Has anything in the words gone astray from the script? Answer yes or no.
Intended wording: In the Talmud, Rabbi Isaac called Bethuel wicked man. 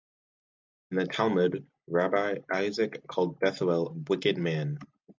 no